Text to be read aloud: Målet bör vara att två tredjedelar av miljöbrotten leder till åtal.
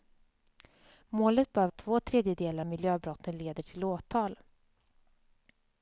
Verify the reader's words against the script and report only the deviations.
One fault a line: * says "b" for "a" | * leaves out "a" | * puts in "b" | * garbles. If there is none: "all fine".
* leaves out "vara"
* leaves out "av"